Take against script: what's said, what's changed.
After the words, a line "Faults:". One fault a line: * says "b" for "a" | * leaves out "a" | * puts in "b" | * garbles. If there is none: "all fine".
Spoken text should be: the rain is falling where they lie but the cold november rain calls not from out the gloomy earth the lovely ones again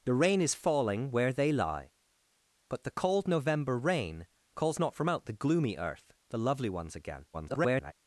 the rain is falling where they lie but the cold november rain calls not from out the gloomy earth the lovely ones again [garbled]
Faults:
* garbles